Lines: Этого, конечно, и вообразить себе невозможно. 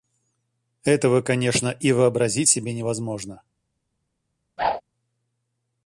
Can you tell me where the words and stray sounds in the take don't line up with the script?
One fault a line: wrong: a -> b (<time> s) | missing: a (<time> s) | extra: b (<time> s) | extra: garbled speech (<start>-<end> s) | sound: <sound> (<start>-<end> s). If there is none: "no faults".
sound: whoosh (4.6-4.8 s)